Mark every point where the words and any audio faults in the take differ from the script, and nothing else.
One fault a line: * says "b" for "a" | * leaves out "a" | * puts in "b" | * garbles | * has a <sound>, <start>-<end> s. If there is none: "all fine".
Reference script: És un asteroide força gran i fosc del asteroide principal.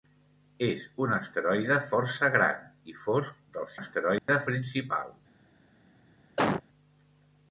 * has a dropout, 4.2-4.3 s
* has a cough, 6.4-6.7 s